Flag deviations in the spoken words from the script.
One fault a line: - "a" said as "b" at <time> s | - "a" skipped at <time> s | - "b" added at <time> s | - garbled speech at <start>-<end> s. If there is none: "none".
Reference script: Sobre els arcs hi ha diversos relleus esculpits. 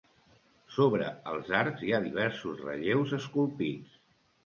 none